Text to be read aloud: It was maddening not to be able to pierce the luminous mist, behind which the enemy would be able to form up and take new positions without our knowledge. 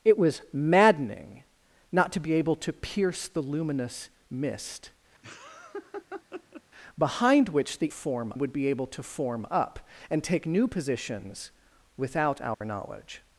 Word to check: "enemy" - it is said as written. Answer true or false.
false